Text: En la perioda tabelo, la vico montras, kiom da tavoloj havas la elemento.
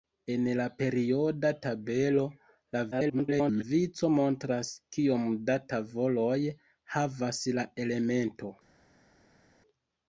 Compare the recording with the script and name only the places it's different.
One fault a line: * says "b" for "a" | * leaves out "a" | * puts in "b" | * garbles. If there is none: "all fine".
* garbles